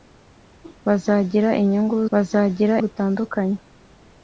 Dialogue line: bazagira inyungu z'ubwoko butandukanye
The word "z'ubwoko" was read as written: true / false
false